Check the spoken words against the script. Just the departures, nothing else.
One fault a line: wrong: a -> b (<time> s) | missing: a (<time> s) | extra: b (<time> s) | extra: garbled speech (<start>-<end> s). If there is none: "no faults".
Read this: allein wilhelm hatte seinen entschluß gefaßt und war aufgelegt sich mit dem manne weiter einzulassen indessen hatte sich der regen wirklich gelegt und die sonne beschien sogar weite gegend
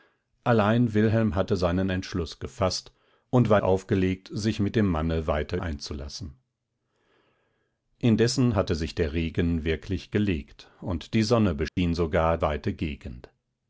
no faults